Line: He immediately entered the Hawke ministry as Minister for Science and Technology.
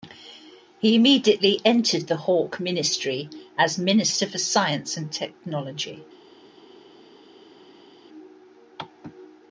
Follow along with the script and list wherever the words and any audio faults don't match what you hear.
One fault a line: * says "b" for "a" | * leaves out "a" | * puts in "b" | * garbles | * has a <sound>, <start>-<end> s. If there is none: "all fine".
all fine